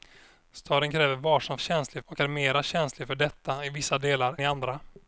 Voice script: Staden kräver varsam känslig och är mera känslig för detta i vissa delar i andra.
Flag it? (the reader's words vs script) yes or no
no